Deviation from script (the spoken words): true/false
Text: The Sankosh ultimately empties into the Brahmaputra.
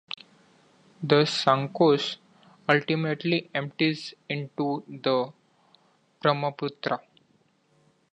false